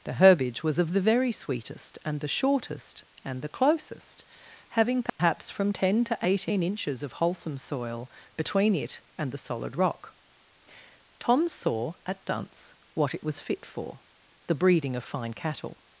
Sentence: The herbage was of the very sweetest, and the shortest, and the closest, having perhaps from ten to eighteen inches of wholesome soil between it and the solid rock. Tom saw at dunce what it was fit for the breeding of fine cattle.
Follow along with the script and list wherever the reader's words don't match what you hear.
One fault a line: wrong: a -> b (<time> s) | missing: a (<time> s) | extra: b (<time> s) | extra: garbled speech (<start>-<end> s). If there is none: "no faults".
no faults